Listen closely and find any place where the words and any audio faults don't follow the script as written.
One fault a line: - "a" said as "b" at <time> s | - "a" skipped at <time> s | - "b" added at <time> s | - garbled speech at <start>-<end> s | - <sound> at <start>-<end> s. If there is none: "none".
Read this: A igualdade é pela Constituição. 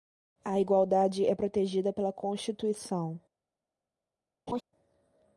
- "protegida" added at 1.3 s
- laugh at 4.5-4.6 s